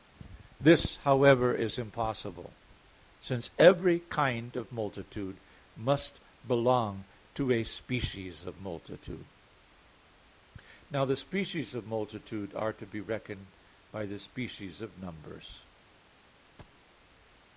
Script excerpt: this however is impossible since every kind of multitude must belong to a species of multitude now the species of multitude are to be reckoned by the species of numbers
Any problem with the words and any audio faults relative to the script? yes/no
yes